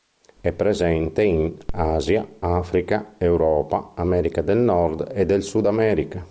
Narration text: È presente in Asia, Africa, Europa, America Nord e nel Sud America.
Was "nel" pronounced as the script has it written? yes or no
no